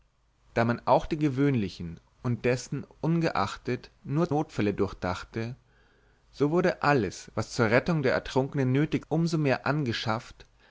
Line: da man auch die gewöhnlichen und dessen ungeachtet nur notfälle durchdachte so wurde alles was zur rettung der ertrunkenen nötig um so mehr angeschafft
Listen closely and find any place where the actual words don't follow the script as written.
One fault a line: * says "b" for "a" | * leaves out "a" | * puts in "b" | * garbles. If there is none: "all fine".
all fine